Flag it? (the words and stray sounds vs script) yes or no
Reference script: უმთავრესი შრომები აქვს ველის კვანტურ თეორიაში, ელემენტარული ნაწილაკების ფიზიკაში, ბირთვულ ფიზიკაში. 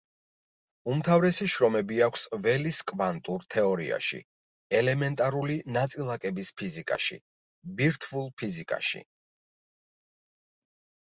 no